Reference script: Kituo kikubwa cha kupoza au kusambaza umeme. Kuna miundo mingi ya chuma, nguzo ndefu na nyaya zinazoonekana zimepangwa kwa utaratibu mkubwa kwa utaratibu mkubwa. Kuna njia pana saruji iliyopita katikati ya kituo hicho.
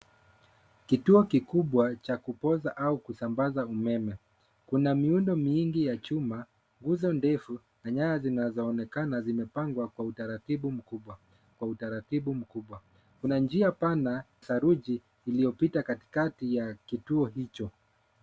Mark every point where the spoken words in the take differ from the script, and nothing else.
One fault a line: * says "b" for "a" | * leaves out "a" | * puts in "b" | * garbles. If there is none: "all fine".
all fine